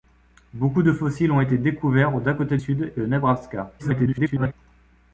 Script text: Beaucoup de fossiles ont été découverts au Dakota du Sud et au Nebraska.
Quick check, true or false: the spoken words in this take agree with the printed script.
false